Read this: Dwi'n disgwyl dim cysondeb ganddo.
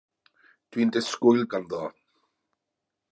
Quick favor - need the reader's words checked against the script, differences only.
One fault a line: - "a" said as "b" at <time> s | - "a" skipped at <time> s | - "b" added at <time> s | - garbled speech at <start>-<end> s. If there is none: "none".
- "dim cysondeb" skipped at 1.4 s